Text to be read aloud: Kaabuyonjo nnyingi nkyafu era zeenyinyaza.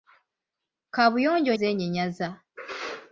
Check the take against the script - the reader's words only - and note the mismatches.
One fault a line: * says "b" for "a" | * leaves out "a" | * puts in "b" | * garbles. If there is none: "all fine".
* leaves out "nnyingi nkyafu era"